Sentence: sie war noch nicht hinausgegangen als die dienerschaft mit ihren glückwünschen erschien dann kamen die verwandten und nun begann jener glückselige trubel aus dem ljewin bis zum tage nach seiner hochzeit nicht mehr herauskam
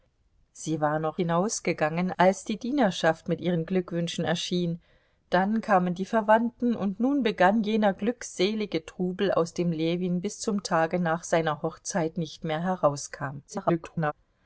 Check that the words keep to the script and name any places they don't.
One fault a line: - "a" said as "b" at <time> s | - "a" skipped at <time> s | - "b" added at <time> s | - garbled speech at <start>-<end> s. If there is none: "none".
- "nicht" skipped at 1.2 s
- garbled speech at 13.5-14.1 s